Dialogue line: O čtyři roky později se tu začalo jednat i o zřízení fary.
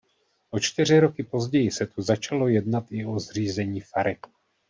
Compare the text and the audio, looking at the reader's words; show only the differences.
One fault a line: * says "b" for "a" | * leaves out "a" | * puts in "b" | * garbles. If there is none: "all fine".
all fine